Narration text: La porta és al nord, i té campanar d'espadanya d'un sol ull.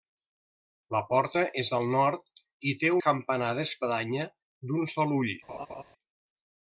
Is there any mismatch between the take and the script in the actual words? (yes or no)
no